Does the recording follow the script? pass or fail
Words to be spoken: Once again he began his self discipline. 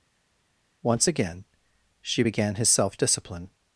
fail